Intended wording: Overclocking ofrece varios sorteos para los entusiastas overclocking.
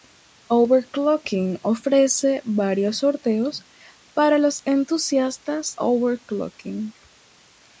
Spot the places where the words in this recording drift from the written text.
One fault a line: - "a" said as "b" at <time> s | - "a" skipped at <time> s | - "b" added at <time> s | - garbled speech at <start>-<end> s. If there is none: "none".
none